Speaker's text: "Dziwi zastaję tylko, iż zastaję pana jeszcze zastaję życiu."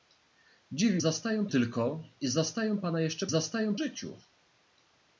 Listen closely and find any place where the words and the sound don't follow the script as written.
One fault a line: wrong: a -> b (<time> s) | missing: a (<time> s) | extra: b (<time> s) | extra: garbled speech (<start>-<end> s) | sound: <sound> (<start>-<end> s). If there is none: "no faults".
no faults